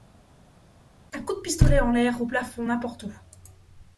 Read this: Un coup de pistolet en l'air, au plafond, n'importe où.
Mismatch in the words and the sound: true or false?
false